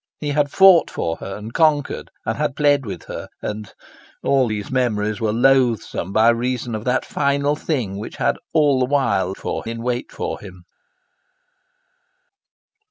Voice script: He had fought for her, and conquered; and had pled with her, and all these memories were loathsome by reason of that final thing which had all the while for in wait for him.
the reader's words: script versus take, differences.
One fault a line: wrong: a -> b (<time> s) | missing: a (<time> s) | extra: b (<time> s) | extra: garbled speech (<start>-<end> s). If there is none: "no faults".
no faults